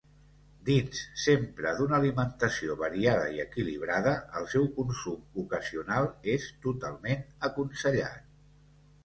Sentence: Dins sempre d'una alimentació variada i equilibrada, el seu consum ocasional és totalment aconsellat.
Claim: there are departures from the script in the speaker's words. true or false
false